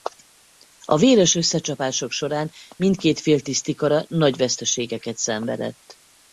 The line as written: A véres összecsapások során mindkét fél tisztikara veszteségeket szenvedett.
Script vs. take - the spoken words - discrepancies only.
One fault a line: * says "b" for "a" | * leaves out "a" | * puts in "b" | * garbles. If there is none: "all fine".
* puts in "nagy"